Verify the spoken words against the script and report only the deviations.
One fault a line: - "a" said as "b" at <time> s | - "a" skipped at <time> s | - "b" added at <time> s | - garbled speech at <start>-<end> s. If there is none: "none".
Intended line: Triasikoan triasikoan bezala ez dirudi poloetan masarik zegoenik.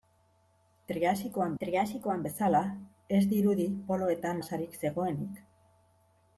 none